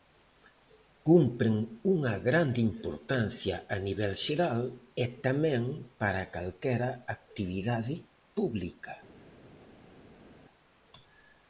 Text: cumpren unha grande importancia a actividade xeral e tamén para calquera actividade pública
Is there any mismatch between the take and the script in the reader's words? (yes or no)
yes